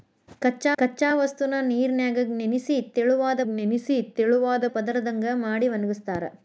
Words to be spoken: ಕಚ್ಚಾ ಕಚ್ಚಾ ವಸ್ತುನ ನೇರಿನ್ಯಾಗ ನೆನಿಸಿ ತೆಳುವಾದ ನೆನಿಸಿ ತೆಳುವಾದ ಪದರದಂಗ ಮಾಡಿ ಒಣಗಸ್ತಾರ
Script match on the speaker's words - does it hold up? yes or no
yes